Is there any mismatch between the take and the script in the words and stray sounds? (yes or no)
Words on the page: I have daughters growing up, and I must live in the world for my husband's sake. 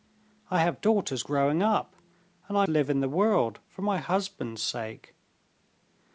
yes